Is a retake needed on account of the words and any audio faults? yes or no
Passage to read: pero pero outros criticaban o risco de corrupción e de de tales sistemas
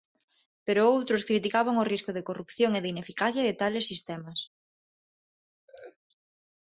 yes